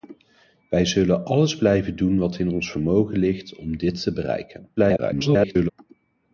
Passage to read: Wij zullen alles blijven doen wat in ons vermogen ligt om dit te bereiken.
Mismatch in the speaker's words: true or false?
true